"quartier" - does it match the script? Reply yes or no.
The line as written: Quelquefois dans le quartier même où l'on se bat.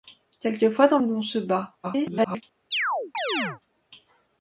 no